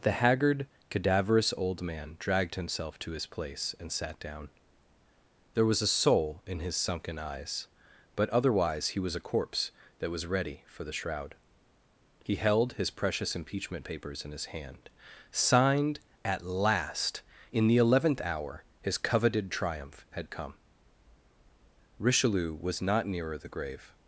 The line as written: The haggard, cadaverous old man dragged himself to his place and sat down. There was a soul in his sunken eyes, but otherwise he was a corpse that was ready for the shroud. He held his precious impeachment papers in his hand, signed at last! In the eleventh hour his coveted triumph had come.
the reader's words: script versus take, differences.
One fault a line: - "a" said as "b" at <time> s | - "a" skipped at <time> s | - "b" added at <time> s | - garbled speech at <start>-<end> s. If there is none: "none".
- "Richelieu was not nearer the grave" added at 22.0 s